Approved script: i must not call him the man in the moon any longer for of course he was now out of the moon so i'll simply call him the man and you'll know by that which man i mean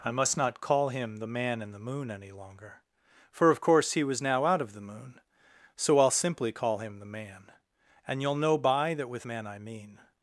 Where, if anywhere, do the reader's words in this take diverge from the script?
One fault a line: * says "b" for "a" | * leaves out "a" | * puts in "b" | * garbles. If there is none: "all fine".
* says "with" for "which"